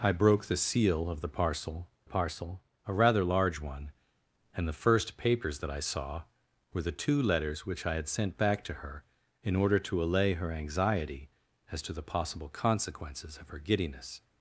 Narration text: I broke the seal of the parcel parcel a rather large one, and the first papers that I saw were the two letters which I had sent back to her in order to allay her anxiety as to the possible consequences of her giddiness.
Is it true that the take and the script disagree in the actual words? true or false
false